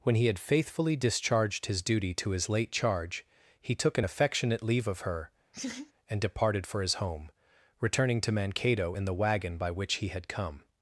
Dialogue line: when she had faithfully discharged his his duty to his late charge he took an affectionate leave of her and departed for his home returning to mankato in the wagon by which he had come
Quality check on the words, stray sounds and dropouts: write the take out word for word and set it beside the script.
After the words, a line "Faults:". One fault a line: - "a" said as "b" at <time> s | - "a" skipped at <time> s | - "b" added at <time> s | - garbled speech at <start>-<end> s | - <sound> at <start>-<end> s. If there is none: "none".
when he had faithfully discharged his duty to his late charge he took an affectionate leave of her and departed for his home returning to mankato in the wagon by which he had come
Faults:
- "she" said as "he" at 0.1 s
- "his" skipped at 1.8 s
- laugh at 5.5-5.9 s